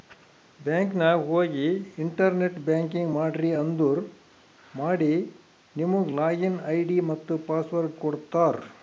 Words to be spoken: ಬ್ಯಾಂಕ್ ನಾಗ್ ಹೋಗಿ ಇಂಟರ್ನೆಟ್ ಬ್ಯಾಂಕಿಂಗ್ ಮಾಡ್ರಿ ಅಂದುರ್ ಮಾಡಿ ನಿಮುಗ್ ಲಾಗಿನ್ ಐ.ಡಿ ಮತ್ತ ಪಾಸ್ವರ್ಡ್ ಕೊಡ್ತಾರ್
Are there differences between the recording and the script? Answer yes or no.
no